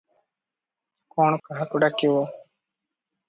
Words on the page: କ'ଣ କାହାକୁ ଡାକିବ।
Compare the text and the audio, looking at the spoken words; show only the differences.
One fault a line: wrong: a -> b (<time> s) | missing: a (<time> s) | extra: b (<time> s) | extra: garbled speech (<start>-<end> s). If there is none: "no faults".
no faults